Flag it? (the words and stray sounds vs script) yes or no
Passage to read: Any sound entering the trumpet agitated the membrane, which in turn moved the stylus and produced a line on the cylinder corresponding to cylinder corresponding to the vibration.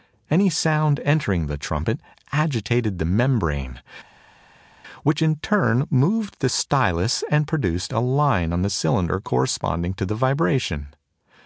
yes